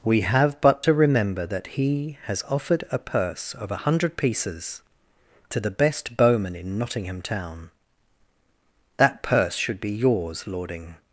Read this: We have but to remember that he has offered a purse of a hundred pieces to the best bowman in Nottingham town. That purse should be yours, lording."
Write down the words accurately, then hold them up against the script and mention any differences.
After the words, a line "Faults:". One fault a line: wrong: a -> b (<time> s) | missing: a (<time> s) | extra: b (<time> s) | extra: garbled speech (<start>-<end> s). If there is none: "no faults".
We have but to remember that he has offered a purse of a hundred pieces to the best bowman in Nottingham town. That purse should be yours, lording."
Faults:
no faults